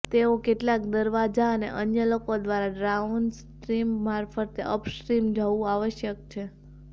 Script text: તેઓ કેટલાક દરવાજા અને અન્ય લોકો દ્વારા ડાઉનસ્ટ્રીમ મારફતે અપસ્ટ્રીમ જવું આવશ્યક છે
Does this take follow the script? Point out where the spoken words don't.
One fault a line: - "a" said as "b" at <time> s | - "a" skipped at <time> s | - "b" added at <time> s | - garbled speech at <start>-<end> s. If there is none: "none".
none